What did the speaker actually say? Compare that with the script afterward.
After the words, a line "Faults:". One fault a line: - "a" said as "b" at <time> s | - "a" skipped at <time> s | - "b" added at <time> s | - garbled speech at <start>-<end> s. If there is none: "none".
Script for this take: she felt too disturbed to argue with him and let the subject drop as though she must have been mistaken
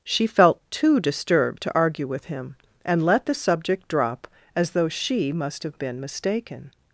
she felt too disturbed to argue with him and let the subject drop as though she must have been mistaken
Faults:
none